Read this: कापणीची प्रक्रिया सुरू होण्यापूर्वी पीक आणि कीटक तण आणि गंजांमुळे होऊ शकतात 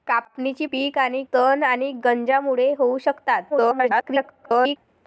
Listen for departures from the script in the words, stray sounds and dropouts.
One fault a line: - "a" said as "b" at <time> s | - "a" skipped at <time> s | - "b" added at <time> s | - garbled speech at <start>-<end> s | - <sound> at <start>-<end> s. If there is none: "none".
- "प्रक्रिया सुरू होण्यापूर्वी" skipped at 0.7 s
- "कीटक" skipped at 1.2 s
- garbled speech at 3.5-4.8 s